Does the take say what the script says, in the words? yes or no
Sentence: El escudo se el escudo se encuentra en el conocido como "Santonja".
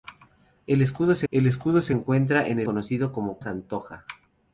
yes